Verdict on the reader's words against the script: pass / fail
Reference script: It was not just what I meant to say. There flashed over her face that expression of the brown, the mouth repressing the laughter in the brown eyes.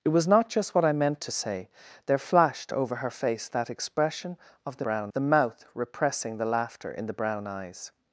pass